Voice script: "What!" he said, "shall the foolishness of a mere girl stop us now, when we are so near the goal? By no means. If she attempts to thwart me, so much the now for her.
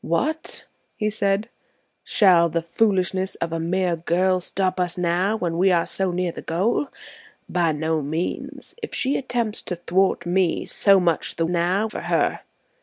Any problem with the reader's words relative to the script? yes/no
no